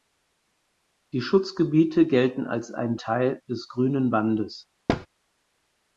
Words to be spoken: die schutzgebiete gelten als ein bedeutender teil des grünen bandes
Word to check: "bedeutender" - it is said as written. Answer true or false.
false